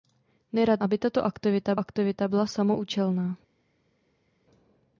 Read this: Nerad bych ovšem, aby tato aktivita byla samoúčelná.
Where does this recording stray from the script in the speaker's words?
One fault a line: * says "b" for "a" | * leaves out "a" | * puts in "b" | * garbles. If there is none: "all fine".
* leaves out "bych ovšem"
* puts in "aktivita"